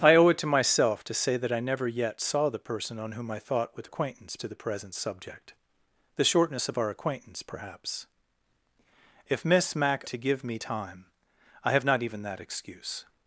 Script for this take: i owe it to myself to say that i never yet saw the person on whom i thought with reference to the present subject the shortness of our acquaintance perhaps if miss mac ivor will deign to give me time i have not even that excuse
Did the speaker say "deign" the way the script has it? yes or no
no